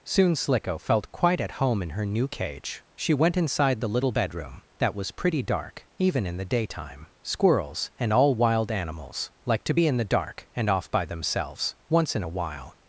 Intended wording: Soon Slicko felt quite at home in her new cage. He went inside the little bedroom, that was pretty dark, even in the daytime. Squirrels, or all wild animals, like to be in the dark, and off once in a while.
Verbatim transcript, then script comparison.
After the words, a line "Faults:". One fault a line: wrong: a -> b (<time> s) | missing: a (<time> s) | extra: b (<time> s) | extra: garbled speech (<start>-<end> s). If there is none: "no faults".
Soon Slicko felt quite at home in her new cage. She went inside the little bedroom, that was pretty dark, even in the daytime. Squirrels, and all wild animals, like to be in the dark, and off by themselves, once in a while.
Faults:
wrong: He -> She (3.0 s)
wrong: or -> and (8.0 s)
extra: by themselves (10.9 s)